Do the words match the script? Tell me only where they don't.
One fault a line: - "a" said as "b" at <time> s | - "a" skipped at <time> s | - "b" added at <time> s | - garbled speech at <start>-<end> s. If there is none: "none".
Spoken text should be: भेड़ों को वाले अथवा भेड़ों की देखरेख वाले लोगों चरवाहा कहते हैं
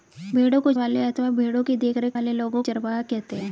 none